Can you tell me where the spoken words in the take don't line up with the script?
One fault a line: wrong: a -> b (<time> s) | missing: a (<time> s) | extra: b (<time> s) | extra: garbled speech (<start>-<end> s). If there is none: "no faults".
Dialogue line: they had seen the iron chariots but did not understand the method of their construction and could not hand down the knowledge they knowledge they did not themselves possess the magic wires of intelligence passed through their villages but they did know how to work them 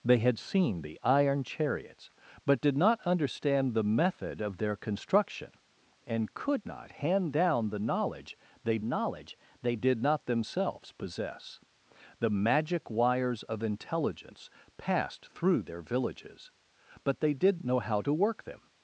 no faults